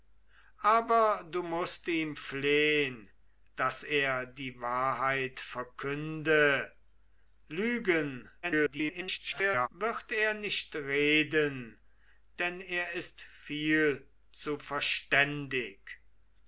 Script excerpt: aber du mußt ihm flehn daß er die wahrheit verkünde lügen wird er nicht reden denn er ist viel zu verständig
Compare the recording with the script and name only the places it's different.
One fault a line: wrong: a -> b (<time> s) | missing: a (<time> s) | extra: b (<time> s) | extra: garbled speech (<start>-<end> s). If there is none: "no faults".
extra: garbled speech (8.4-9.7 s)